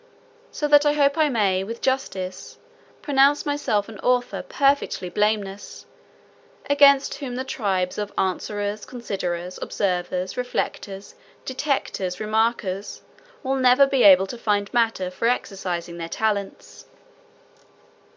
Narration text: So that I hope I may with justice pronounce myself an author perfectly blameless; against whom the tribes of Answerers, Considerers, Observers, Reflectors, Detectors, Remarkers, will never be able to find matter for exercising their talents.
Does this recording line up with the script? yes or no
yes